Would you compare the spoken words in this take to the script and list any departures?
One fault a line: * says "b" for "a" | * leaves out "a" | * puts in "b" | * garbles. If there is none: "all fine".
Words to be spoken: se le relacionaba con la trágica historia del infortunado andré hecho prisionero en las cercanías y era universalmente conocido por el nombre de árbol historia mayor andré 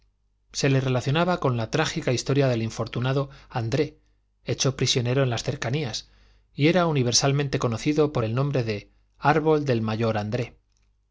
* says "del" for "historia"